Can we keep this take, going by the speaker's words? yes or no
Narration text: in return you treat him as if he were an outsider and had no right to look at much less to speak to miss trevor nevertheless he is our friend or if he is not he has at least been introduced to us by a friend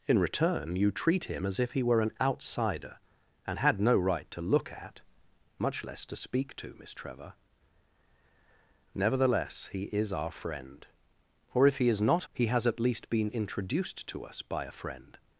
yes